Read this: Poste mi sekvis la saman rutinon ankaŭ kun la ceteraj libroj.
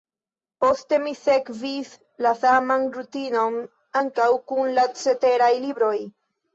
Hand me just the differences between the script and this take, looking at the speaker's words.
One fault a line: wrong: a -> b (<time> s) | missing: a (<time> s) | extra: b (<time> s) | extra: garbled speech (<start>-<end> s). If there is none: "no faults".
no faults